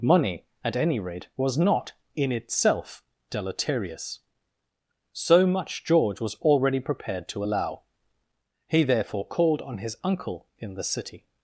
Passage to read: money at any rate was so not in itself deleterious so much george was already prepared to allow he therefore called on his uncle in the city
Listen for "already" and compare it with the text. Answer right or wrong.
right